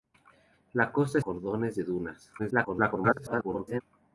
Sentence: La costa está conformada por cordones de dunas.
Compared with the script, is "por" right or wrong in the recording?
wrong